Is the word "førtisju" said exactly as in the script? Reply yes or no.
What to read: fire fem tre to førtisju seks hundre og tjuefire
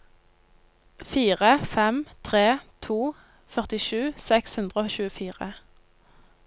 yes